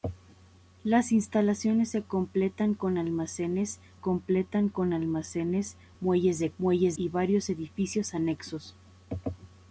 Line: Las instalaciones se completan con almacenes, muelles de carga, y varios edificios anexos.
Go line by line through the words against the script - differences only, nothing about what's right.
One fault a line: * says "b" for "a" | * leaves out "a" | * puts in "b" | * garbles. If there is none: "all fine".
* puts in "completan con almacenes"
* says "muelles" for "carga"